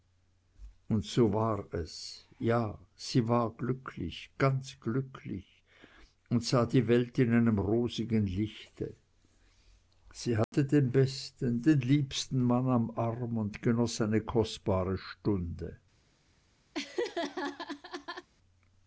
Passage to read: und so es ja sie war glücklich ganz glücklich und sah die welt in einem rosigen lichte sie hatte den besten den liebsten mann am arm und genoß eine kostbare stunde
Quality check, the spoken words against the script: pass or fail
fail